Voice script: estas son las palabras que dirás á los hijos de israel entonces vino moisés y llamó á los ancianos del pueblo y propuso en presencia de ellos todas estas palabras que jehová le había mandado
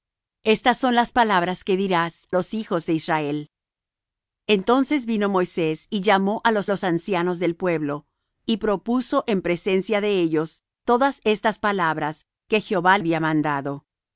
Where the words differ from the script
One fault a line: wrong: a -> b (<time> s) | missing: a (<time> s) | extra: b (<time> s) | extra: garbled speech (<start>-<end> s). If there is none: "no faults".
missing: á (2.3 s)
extra: los (6.7 s)
missing: le (13.0 s)